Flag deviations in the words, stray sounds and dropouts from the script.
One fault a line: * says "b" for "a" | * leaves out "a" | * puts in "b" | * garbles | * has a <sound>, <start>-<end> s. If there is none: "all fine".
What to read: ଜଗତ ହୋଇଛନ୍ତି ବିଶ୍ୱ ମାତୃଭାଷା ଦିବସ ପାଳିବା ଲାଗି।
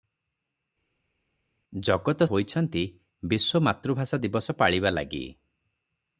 all fine